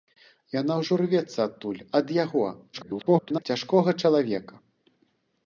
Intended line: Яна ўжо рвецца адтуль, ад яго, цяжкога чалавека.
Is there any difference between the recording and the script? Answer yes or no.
yes